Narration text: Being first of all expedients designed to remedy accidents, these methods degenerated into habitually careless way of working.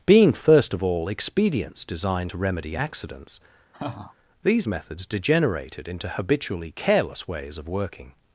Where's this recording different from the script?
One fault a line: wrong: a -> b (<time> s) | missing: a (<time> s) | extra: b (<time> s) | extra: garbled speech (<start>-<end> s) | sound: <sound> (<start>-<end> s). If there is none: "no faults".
sound: laugh (3.7-4.1 s)
wrong: way -> ways (7.2 s)